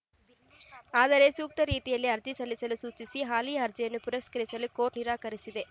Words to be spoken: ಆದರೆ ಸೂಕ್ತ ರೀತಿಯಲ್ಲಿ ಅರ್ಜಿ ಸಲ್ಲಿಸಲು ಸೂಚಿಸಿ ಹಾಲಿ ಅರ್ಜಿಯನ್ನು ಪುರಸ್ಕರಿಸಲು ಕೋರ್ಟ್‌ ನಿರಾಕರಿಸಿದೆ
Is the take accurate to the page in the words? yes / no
yes